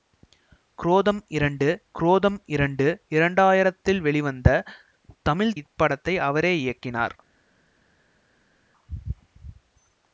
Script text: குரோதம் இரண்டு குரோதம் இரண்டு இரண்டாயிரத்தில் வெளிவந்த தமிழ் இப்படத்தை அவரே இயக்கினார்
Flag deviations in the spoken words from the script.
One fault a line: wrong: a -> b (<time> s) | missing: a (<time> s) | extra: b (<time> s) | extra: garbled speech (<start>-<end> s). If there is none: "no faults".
no faults